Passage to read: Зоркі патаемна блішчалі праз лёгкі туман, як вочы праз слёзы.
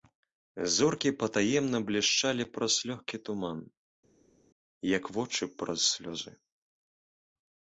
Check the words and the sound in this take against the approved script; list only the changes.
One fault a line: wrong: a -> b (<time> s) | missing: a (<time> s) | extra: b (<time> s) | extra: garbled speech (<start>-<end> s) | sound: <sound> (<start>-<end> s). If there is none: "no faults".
no faults